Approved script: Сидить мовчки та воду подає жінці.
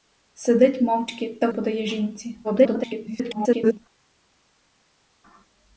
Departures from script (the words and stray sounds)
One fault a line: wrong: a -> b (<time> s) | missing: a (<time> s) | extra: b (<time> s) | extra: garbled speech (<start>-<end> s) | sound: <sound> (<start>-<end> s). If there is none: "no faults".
missing: воду (1.5 s)
extra: garbled speech (2.4-3.8 s)